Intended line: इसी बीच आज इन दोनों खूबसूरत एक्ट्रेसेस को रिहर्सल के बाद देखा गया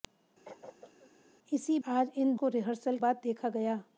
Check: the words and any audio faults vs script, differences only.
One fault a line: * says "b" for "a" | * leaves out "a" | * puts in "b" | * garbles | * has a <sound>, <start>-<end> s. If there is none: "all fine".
* has a throat clearing, 0.4-1.1 s
* leaves out "बीच"
* leaves out "दोनों खूबसूरत एक्ट्रेसेस"
* leaves out "के"